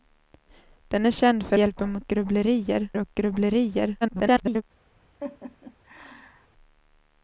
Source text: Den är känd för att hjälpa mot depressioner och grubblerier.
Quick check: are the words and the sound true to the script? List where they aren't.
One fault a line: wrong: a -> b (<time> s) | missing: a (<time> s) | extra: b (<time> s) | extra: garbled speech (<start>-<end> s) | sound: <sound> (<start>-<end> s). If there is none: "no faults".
missing: att (1.6 s)
wrong: depressioner -> grubblerier (2.1 s)
extra: garbled speech (4.0-4.6 s)
sound: laugh (5.2-6.5 s)